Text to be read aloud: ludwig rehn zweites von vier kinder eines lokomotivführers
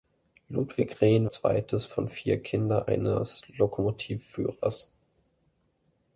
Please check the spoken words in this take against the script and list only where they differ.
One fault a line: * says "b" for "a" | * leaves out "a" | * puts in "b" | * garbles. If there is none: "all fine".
all fine